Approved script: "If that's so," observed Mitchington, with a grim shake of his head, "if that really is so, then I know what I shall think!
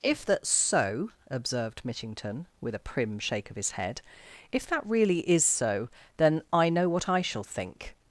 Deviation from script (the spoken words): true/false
true